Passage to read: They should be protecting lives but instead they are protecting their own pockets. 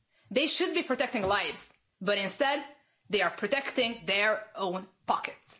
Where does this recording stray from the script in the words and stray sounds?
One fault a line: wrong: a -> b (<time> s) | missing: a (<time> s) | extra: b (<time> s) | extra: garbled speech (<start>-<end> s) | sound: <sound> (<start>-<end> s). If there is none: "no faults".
no faults